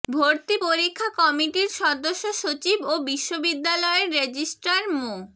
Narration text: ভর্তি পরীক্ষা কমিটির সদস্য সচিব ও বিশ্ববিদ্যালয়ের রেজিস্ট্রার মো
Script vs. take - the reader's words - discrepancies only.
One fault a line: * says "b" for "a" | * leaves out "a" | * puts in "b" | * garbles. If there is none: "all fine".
all fine